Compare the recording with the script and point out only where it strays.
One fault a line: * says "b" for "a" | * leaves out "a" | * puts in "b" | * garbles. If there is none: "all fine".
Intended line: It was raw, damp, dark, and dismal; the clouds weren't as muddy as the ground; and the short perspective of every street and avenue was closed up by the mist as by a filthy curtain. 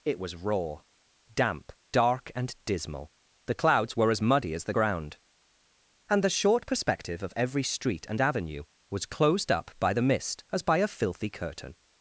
* says "were" for "weren't"